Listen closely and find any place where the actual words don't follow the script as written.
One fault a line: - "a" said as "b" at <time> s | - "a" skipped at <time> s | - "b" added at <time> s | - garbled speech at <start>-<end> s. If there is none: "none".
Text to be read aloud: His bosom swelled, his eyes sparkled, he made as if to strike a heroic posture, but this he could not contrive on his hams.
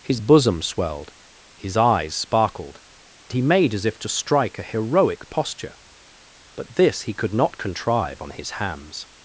none